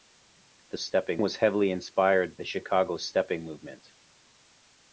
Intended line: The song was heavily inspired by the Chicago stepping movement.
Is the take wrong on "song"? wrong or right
wrong